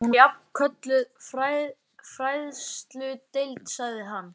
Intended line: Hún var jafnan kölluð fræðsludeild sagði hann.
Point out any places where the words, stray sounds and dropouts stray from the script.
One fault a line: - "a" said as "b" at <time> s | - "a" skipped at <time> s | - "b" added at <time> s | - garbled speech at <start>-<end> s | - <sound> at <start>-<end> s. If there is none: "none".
- "var" skipped at 0.1 s